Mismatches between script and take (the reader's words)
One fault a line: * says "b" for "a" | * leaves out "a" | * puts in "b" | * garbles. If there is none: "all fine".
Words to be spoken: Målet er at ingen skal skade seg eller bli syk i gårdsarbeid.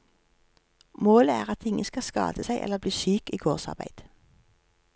all fine